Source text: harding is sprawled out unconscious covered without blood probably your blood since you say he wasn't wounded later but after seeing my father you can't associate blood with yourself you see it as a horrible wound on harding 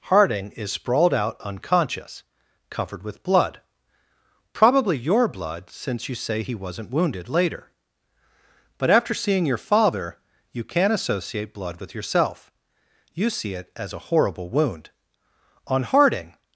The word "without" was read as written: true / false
false